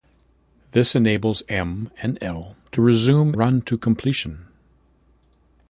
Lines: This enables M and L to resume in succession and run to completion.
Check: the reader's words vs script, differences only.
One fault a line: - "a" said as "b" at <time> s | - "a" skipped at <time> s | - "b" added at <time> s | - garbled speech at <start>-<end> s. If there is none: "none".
- "in succession and" skipped at 3.3 s